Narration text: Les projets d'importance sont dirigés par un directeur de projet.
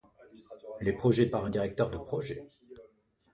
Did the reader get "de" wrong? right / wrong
right